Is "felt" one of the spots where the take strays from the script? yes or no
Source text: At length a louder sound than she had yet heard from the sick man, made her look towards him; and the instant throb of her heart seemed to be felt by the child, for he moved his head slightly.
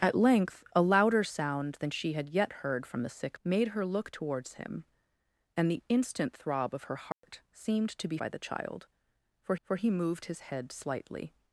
yes